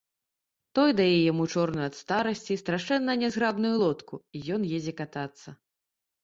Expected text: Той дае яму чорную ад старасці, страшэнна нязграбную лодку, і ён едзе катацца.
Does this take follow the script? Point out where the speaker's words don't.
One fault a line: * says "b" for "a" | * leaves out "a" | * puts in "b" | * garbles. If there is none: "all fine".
all fine